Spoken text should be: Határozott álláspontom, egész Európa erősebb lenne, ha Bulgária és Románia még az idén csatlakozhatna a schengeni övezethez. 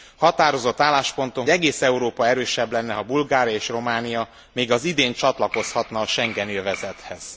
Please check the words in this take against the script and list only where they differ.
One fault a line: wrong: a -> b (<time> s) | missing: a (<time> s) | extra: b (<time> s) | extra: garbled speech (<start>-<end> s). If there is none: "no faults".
no faults